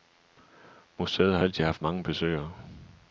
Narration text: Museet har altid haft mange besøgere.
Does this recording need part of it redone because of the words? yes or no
no